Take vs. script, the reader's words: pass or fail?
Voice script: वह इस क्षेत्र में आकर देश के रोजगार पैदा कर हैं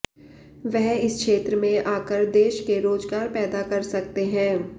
fail